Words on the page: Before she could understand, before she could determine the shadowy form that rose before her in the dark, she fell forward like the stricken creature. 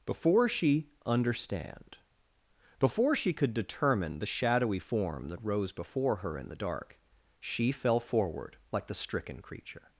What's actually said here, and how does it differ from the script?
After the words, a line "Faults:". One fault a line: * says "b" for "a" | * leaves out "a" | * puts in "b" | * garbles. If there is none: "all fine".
Before she understand, before she could determine the shadowy form that rose before her in the dark, she fell forward like the stricken creature.
Faults:
* leaves out "could"